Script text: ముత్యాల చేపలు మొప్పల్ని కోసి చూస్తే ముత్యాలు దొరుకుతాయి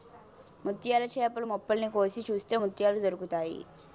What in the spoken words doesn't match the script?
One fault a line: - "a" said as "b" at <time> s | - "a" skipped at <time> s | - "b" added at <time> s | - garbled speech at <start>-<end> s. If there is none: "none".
none